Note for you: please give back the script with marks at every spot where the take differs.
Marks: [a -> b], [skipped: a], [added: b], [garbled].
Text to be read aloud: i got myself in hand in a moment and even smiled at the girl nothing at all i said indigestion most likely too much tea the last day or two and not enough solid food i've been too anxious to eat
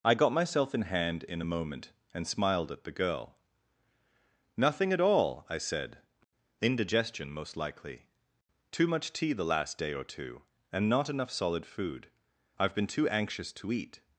i got myself in hand in a moment and [skipped: even] smiled at the girl nothing at all i said indigestion most likely too much tea the last day or two and not enough solid food i've been too anxious to eat